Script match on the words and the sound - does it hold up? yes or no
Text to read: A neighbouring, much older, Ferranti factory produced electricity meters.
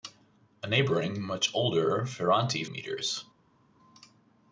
no